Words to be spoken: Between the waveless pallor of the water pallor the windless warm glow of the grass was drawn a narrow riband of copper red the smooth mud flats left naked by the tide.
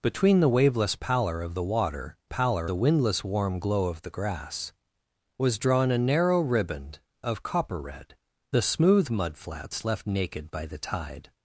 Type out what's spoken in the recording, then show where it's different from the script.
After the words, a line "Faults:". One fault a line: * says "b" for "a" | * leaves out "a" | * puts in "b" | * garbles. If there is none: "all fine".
Between the waveless pallor of the water pallor the windless warm glow of the grass was drawn a narrow riband of copper red the smooth mud flats left naked by the tide.
Faults:
all fine